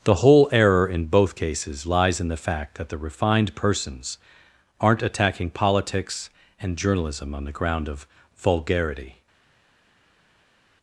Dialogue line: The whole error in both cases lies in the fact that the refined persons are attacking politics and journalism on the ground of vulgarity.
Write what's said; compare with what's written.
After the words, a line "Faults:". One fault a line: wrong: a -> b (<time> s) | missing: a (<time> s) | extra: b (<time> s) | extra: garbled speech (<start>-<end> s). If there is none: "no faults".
The whole error in both cases lies in the fact that the refined persons aren't attacking politics and journalism on the ground of vulgarity.
Faults:
wrong: are -> aren't (4.8 s)